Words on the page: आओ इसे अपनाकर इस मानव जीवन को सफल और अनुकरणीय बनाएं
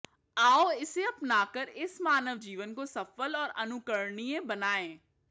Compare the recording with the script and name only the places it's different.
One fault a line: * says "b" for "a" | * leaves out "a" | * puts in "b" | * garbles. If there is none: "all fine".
all fine